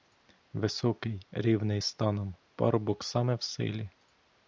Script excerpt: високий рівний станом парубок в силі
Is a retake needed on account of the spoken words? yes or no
yes